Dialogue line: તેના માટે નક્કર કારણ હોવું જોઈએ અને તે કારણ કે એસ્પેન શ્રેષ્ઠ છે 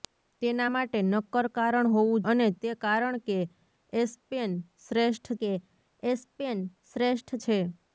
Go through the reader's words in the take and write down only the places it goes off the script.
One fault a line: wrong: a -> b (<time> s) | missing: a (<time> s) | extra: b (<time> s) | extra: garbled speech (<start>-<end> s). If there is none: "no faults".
missing: જોઈએ (2.2 s)
extra: કે એસ્પેન શ્રેષ્ઠ (5.4 s)